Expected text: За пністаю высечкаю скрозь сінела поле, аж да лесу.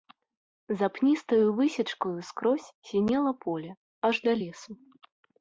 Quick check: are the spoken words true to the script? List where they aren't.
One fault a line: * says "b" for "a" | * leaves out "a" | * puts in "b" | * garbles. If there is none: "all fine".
all fine